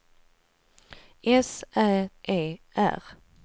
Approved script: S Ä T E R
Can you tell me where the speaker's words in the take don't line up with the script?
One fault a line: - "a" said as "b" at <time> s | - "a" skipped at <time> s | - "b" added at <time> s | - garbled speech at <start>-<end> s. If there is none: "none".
- "T" skipped at 2.1 s